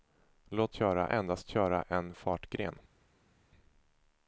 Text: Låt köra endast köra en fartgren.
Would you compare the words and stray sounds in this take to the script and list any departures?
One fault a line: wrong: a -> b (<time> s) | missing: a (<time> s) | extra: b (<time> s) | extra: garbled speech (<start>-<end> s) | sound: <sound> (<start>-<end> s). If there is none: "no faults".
no faults